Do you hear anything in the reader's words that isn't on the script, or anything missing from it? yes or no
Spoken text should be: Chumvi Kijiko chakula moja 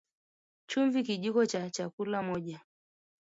yes